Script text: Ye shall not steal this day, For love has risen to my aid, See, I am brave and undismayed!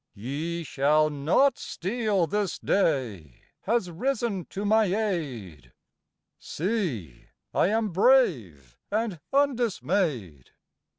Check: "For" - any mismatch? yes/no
yes